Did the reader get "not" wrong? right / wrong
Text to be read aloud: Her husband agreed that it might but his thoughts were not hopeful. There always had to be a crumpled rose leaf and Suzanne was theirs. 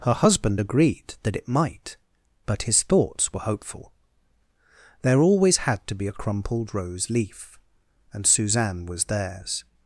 wrong